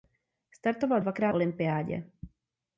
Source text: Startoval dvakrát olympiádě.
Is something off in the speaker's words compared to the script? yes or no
no